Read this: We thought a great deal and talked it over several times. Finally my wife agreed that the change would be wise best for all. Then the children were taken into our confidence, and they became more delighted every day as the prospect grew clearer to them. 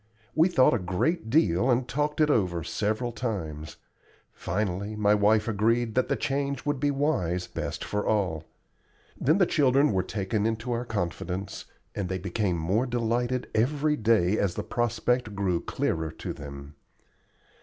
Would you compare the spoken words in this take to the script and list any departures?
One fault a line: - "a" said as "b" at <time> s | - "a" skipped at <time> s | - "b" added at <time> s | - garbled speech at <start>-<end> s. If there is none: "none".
none